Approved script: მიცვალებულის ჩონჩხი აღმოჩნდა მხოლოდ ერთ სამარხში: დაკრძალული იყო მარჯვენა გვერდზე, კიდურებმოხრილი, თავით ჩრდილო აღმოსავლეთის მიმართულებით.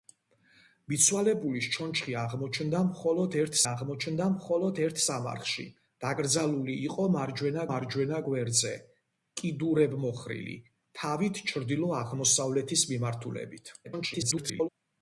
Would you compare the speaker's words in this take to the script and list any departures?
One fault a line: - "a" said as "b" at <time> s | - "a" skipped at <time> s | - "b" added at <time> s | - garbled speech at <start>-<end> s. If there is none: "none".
- "აღმოჩნდა მხოლოდ ერთ" added at 3.7 s
- "მარჯვენა" added at 7.7 s
- garbled speech at 13.8-14.7 s